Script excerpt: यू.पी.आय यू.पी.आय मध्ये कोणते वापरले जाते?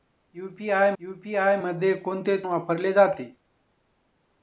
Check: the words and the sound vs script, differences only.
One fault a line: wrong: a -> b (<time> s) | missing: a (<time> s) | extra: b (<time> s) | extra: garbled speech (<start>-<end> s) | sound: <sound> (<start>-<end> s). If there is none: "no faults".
no faults